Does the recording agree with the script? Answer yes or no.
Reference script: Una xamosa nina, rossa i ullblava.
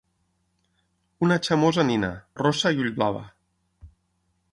yes